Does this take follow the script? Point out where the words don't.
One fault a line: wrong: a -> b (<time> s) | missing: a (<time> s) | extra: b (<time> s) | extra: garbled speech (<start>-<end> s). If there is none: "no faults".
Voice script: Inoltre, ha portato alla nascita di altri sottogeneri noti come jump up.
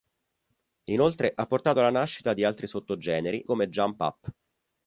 missing: noti (3.4 s)